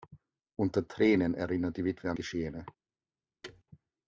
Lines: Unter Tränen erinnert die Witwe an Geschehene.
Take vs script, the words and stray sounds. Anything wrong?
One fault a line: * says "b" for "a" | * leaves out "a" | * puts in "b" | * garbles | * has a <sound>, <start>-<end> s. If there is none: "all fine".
* has a thud, 3.4-3.6 s